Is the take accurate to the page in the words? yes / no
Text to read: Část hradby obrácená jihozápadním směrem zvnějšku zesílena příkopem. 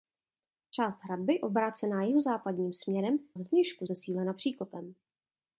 yes